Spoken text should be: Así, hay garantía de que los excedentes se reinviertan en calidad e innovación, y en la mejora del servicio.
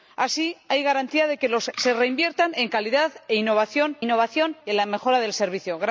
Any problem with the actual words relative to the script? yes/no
yes